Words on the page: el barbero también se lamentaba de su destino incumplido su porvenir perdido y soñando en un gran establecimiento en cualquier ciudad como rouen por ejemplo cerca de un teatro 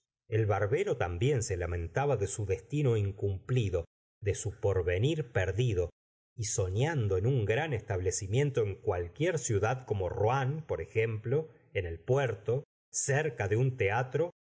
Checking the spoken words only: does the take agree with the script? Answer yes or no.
no